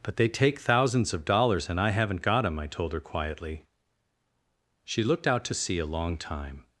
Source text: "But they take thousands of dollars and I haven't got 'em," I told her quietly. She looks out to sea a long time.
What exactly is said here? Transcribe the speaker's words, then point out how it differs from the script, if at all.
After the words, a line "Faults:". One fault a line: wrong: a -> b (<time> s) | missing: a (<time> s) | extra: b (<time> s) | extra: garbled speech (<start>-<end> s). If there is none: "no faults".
"But they take thousands of dollars and I haven't got 'em," I told her quietly. She looked out to sea a long time.
Faults:
wrong: looks -> looked (5.0 s)